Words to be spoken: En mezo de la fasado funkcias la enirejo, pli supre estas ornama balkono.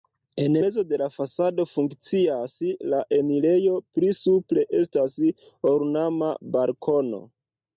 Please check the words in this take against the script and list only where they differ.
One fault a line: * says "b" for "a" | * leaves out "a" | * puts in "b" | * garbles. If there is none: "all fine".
all fine